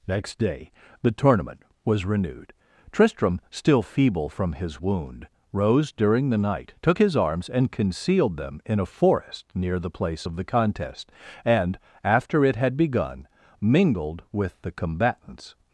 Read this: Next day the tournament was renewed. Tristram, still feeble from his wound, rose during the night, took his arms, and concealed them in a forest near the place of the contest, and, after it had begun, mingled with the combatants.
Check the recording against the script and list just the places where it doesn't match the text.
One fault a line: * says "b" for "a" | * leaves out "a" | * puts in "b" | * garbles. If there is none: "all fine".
all fine